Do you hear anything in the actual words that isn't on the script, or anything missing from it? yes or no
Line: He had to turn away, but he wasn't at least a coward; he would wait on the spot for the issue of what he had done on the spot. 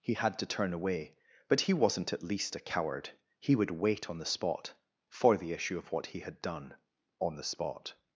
no